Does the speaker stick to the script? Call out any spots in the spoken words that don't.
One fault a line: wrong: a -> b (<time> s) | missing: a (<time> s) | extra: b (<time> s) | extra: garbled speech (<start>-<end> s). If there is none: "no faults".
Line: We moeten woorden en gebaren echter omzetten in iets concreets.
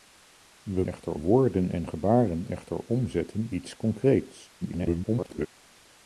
wrong: moeten -> echter (0.8 s)
missing: in (3.5 s)
extra: garbled speech (4.6-5.5 s)